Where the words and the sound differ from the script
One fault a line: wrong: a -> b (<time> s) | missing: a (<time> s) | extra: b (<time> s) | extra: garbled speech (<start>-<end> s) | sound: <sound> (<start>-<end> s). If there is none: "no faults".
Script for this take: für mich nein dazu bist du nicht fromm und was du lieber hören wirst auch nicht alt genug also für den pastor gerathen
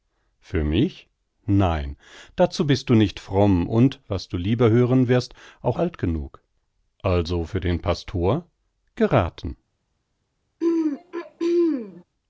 missing: nicht (5.8 s)
sound: throat clearing (10.6-12.0 s)